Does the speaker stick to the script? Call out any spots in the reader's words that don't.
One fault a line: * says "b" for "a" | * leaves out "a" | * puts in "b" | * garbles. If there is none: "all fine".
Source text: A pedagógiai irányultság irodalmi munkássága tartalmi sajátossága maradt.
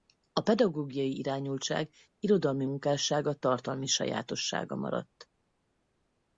all fine